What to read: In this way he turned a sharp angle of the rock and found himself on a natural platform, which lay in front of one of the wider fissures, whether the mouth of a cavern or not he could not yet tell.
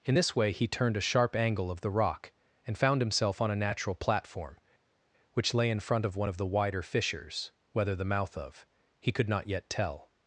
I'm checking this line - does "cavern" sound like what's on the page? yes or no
no